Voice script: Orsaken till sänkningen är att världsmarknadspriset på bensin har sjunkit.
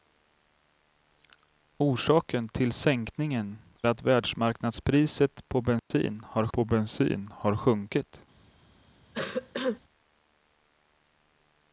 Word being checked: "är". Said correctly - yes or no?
no